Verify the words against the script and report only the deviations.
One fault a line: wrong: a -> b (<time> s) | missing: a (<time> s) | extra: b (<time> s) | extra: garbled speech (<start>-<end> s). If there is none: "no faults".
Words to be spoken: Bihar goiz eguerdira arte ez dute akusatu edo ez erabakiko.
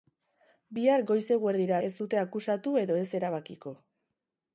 missing: arte (1.8 s)